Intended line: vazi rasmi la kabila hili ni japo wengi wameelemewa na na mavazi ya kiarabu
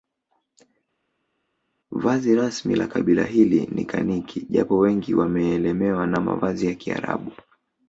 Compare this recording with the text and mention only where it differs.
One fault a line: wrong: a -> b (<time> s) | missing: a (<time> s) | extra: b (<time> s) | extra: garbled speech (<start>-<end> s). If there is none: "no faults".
extra: kaniki (3.8 s)
missing: na (6.2 s)